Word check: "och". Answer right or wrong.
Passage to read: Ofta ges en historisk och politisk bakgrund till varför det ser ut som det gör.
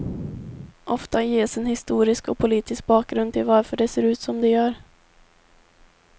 right